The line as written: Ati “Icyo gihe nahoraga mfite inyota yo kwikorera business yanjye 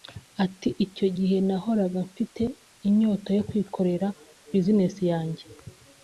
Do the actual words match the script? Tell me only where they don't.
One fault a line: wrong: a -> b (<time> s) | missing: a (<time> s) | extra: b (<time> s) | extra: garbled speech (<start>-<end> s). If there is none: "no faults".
no faults